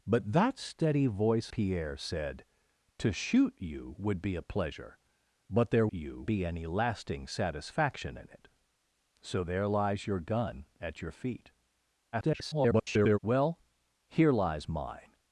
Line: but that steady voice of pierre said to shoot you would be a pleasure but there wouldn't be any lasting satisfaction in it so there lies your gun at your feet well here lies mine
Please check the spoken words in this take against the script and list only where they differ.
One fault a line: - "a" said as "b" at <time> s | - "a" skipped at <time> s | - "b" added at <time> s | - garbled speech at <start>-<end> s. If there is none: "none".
- "of" skipped at 1.5 s
- "wouldn't" said as "you" at 5.9 s
- garbled speech at 12.1-13.2 s